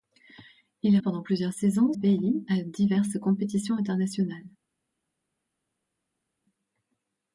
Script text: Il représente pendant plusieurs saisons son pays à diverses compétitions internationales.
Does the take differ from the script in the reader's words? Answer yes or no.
yes